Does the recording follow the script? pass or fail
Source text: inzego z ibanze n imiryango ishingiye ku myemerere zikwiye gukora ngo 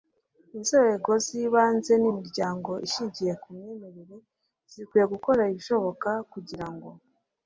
fail